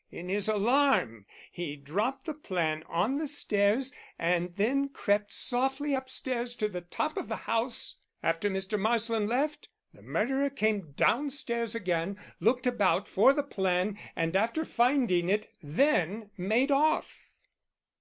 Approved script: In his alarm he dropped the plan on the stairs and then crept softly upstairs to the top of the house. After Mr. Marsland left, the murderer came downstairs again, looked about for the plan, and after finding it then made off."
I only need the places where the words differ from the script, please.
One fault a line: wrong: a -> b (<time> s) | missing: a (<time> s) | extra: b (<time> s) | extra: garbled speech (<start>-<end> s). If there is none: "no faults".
no faults